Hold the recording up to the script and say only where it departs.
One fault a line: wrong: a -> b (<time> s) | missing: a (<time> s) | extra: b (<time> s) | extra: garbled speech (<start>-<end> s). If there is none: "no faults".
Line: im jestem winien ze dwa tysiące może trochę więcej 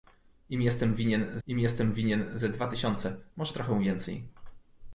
extra: im jestem winien (1.5 s)